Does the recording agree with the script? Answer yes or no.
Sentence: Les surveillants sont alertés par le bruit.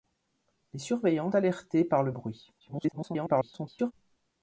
no